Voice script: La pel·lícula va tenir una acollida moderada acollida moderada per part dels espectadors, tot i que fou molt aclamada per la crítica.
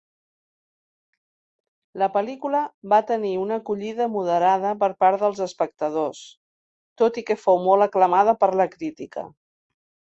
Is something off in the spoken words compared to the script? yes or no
yes